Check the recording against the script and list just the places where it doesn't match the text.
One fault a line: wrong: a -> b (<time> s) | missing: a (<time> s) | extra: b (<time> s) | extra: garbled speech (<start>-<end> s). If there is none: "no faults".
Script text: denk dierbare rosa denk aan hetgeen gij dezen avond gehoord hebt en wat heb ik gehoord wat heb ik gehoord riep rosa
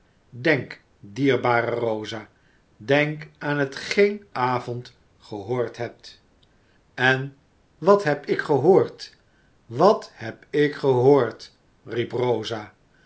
missing: gij dezen (4.3 s)